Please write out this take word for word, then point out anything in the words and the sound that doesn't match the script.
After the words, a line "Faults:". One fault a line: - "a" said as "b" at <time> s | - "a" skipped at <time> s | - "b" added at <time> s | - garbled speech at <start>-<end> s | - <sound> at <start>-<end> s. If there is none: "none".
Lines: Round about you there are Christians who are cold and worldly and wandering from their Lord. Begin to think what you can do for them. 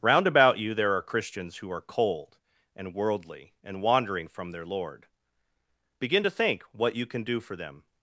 Round about you there are Christians who are cold and worldly and wandering from their Lord. Begin to think what you can do for them.
Faults:
none